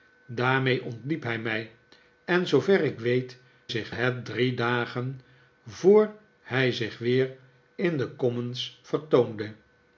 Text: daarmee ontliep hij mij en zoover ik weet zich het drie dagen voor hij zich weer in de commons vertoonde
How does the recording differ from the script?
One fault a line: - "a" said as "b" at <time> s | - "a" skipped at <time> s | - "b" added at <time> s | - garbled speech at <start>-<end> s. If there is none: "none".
none